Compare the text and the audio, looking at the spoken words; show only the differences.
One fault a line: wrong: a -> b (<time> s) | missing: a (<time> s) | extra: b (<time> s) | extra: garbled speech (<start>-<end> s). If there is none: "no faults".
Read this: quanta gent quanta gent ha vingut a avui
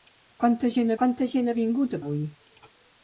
no faults